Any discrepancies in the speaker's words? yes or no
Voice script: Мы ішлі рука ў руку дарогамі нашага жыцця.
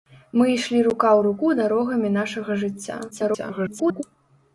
yes